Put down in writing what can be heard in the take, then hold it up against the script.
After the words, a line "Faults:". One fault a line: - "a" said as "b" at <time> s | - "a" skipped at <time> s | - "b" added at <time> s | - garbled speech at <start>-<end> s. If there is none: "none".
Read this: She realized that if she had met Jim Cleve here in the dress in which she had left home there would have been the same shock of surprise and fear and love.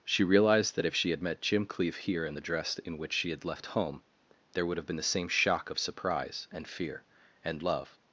She realized that if she had met Jim Cleve here in the dress in which she had left home there would have been the same shock of surprise and fear and love.
Faults:
none